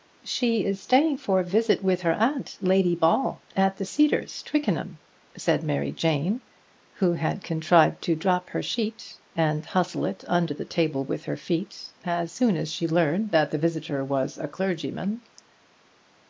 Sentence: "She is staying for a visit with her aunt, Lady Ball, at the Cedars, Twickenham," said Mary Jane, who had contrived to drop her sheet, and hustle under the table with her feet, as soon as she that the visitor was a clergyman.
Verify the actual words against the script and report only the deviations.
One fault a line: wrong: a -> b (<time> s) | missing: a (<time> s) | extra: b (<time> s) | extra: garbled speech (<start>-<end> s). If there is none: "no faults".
extra: it (10.1 s)
extra: learned (12.9 s)